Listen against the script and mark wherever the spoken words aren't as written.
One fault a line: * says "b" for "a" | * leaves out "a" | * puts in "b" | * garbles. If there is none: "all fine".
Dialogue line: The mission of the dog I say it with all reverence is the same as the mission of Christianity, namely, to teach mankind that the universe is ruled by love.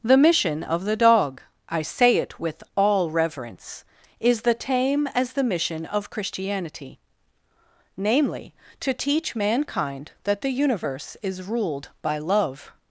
* says "tame" for "same"